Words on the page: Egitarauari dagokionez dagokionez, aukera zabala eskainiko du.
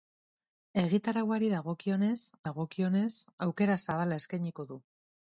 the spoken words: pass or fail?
pass